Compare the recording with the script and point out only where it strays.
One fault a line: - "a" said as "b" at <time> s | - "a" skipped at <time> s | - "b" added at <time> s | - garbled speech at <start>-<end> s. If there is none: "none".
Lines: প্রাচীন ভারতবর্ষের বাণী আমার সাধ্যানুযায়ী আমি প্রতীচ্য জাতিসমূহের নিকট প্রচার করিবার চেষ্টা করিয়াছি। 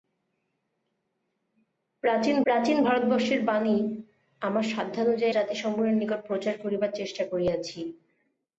- "প্রাচীন" added at 2.5 s
- "আমি প্রতীচ্য" skipped at 5.3 s